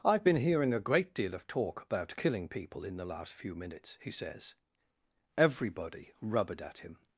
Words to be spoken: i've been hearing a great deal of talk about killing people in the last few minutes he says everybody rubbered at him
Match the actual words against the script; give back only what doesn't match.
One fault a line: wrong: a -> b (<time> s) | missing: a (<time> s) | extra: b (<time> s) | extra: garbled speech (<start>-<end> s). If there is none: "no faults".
no faults